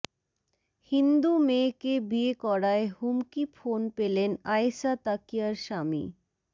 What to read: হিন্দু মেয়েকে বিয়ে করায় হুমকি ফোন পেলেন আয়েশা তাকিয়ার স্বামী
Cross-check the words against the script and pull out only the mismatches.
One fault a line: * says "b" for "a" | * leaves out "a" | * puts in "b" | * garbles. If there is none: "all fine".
all fine